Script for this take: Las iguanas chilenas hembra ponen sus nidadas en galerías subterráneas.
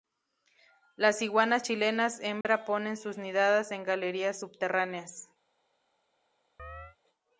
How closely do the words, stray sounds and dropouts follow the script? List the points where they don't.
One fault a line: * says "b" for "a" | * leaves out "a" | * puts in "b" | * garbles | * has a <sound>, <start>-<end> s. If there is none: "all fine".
* has a dropout, 2.4-2.5 s
* has a chirp, 6.6-7.0 s